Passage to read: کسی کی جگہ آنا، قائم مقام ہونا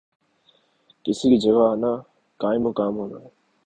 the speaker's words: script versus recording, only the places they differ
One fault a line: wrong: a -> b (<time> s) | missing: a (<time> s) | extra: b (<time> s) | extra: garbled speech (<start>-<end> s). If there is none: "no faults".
no faults